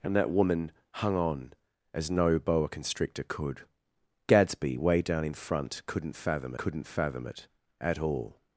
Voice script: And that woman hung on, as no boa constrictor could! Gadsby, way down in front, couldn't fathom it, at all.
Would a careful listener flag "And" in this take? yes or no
no